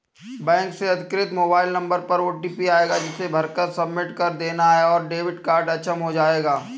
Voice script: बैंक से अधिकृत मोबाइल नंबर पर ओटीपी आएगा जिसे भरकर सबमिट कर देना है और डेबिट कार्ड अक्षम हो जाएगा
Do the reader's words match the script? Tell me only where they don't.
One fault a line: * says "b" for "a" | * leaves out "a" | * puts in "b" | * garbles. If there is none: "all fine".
all fine